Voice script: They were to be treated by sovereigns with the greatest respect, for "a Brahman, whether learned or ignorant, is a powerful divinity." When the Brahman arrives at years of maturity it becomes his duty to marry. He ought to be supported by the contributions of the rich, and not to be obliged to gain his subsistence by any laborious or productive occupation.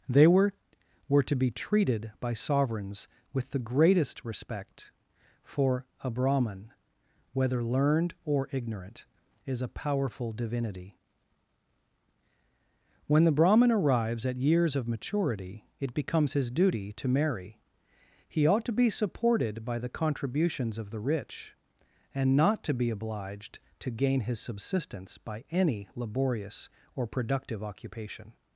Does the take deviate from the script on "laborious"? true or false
false